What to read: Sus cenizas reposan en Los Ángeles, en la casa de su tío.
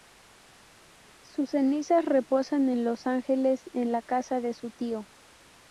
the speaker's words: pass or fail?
pass